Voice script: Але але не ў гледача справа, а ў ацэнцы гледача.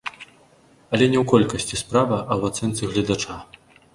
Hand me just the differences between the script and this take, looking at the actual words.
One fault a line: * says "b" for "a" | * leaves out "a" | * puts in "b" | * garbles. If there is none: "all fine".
* leaves out "але"
* says "колькасці" for "гледача"